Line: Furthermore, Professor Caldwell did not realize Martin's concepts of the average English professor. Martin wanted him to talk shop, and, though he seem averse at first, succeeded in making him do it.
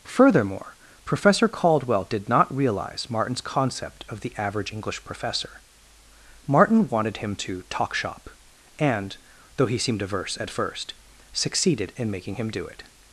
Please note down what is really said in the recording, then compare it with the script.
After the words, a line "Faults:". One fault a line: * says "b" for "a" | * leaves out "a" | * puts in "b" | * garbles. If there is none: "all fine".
Furthermore, Professor Caldwell did not realize Martin's concept of the average English professor. Martin wanted him to talk shop, and, though he seemed averse at first, succeeded in making him do it.
Faults:
* says "concept" for "concepts"
* says "seemed" for "seem"